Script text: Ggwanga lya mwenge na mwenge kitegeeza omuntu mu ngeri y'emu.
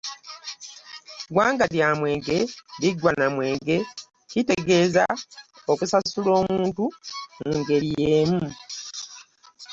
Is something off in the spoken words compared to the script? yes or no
yes